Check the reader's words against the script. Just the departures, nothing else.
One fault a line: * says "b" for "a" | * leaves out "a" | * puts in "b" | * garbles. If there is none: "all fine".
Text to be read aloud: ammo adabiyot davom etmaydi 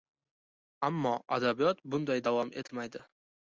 * puts in "bunday"